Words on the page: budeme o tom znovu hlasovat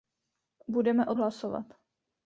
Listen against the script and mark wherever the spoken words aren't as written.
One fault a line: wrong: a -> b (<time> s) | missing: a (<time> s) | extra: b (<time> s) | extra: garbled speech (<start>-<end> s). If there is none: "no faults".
missing: tom znovu (1.1 s)